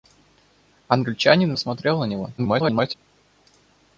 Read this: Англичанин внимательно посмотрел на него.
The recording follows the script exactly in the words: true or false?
false